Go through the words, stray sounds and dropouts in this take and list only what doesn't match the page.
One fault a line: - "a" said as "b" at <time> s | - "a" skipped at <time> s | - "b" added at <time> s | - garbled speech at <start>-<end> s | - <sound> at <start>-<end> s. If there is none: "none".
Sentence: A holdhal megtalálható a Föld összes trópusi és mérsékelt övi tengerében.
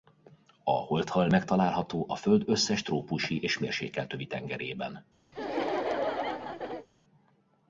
- laugh at 5.3-6.9 s